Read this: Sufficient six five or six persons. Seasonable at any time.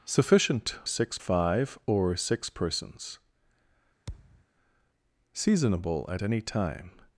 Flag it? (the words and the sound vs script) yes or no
yes